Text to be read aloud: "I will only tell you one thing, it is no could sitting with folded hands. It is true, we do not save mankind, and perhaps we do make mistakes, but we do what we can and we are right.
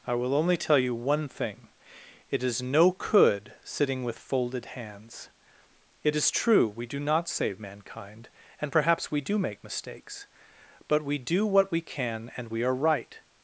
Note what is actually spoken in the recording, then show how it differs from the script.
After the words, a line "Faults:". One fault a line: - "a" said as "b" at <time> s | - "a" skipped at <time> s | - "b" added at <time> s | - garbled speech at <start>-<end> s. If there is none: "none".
"I will only tell you one thing, it is no could sitting with folded hands. It is true, we do not save mankind, and perhaps we do make mistakes, but we do what we can and we are right.
Faults:
none